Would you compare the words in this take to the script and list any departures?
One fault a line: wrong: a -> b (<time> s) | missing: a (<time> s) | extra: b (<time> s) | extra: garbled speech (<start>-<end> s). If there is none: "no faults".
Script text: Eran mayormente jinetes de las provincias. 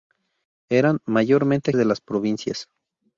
missing: jinetes (1.7 s)